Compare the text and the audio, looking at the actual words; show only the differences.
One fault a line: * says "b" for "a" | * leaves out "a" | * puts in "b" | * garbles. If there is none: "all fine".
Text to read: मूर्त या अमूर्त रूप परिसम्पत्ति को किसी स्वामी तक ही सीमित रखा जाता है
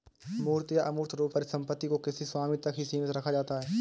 all fine